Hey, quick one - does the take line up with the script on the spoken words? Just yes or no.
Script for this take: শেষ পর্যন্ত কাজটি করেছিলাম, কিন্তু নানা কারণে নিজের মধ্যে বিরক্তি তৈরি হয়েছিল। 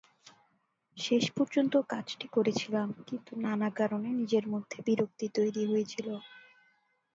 yes